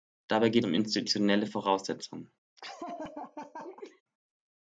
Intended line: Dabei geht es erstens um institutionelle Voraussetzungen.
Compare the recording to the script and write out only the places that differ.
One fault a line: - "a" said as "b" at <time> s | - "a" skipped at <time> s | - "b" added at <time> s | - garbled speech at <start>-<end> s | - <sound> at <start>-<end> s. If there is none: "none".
- "es erstens" skipped at 0.7 s
- laugh at 2.6-4.0 s